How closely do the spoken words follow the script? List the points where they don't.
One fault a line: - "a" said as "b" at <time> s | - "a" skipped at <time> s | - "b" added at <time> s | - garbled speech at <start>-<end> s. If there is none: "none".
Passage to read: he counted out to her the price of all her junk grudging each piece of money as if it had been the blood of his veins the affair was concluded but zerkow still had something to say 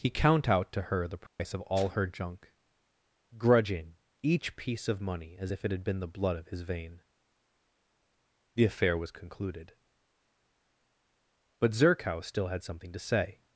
- "counted" said as "count" at 0.1 s
- "veins" said as "vein" at 6.6 s